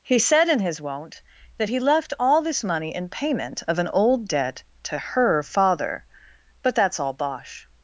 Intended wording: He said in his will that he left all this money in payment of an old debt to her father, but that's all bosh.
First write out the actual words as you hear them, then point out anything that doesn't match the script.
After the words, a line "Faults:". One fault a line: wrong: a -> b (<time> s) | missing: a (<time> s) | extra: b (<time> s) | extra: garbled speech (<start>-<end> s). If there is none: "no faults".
He said in his won't that he left all this money in payment of an old debt to her father, but that's all bosh.
Faults:
wrong: will -> won't (0.8 s)